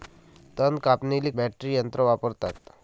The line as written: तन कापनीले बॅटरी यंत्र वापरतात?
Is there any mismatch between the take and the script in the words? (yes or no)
no